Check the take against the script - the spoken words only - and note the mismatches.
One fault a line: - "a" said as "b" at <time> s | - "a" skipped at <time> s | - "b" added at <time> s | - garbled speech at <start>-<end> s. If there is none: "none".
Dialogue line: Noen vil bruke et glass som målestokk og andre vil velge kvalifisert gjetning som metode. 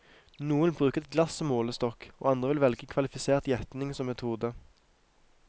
none